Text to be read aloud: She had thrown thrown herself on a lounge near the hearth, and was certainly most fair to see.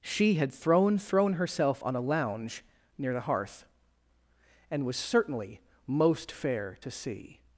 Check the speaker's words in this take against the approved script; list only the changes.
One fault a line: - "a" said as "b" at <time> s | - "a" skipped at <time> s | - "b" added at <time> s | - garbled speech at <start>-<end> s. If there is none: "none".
none